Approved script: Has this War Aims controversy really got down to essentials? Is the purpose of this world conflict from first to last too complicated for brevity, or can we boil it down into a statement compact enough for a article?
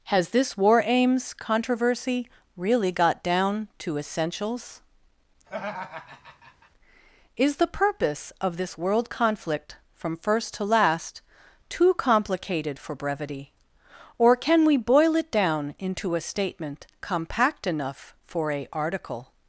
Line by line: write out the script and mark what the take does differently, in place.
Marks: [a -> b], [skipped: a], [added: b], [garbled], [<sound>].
Has this War Aims controversy really got down to essentials? [laugh] Is the purpose of this world conflict from first to last too complicated for brevity, or can we boil it down into a statement compact enough for a article?